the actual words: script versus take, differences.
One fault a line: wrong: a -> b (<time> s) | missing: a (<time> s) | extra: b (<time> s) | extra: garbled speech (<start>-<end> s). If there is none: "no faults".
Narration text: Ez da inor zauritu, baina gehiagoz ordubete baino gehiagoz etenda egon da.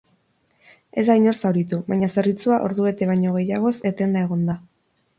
wrong: gehiagoz -> zerbitzua (2.1 s)